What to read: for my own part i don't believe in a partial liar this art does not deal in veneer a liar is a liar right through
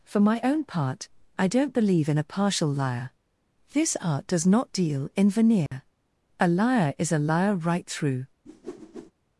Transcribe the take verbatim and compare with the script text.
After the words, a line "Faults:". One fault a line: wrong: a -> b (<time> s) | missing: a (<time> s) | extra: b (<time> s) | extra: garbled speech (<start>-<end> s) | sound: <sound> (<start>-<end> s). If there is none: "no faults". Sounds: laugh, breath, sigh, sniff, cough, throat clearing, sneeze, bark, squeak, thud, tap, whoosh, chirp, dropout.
for my own part i don't believe in a partial liar this art does not deal in veneer a liar is a liar right through
Faults:
sound: dropout (5.7-5.7 s)
sound: whoosh (8.5-9.1 s)